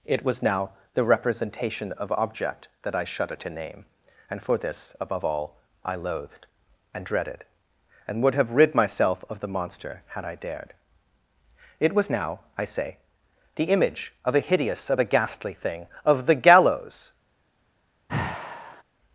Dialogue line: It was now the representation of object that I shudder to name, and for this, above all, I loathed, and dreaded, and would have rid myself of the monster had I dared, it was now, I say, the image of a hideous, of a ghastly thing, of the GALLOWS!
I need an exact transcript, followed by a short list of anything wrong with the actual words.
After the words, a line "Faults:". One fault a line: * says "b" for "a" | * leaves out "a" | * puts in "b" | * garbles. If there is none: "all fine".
It was now the representation of object that I shudder to name, and for this, above all, I loathed, and dreaded, and would have rid myself of the monster had I dared, it was now, I say, the image of a hideous, of a ghastly thing, of the GALLOWS!
Faults:
all fine